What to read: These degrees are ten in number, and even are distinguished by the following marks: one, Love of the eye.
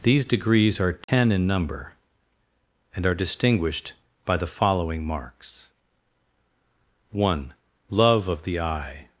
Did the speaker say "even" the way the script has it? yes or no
no